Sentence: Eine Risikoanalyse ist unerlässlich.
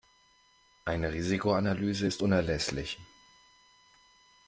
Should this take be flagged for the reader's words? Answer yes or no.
no